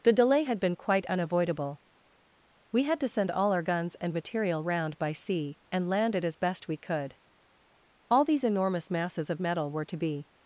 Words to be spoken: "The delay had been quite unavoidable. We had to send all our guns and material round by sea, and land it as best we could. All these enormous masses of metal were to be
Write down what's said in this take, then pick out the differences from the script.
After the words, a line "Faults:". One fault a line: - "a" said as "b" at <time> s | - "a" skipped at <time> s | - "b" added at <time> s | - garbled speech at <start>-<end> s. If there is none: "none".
"The delay had been quite unavoidable. We had to send all our guns and material round by sea, and land it as best we could. All these enormous masses of metal were to be
Faults:
none